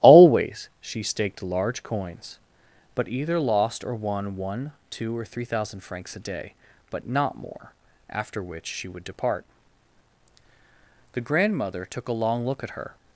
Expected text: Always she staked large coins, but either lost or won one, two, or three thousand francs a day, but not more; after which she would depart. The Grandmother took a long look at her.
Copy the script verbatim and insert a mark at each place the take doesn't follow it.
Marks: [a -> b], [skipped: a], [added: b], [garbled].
Always she staked large coins, but either lost or won one, two, or three thousand francs a day, but not more; after which she would depart. The Grandmother took a long look at her.